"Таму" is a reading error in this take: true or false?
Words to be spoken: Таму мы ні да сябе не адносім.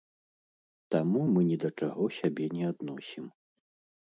false